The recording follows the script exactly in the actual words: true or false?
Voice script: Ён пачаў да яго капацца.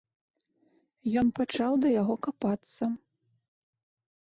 true